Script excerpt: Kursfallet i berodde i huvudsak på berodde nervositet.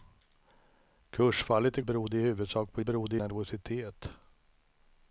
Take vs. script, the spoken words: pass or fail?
pass